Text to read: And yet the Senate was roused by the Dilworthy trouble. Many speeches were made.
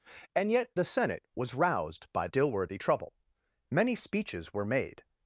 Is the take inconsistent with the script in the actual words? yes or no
yes